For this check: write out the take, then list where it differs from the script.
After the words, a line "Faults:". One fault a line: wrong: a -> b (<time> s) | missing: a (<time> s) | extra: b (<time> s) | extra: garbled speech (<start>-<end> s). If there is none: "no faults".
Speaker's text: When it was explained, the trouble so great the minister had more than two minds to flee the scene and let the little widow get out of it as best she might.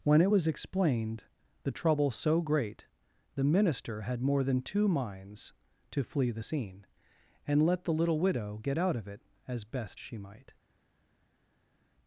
When it was explained, the trouble so great the minister had more than two minds to flee the scene and let the little widow get out of it as best she might.
Faults:
no faults